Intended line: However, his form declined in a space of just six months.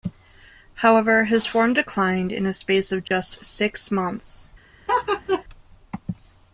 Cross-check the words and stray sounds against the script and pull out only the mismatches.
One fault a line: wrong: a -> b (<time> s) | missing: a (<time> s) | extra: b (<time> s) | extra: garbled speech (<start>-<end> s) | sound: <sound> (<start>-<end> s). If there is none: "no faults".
sound: dropout (3.1-3.1 s)
sound: laugh (4.9-5.4 s)